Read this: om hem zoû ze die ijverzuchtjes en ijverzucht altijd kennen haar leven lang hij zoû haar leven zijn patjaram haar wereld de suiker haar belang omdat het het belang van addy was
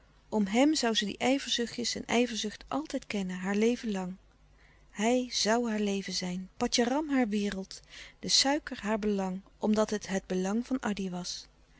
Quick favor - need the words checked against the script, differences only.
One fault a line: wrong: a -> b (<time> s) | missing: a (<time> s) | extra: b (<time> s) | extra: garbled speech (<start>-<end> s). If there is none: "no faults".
no faults